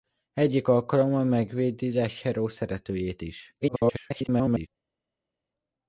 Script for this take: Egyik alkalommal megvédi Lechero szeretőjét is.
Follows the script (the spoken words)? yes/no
no